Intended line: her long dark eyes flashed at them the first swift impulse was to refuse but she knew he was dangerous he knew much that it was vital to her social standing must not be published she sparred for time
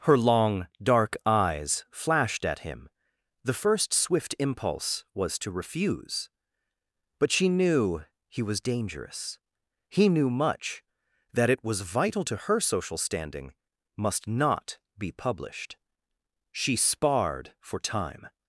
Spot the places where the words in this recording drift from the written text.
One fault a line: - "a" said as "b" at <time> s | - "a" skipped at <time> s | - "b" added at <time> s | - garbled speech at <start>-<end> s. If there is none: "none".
- "them" said as "him" at 2.6 s